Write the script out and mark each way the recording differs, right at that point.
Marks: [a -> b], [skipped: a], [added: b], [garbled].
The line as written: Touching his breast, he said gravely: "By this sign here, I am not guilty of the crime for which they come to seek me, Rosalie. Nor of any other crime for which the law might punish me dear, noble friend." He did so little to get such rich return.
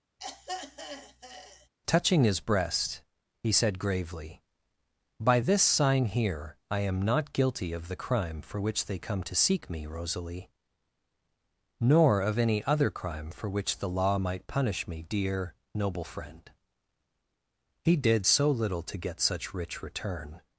Touching his breast, he said gravely: "By this sign here, I am not guilty of the crime for which they come to seek me, Rosalie. Nor of any other crime for which the law might punish me dear, noble friend." He did so little to get such rich return.